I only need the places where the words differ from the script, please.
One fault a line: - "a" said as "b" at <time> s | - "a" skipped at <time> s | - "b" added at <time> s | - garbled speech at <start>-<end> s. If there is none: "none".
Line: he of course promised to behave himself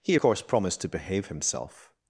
- "of" skipped at 0.1 s